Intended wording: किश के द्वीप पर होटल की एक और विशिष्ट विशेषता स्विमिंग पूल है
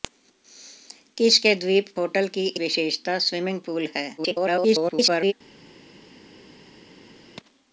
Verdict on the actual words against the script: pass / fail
fail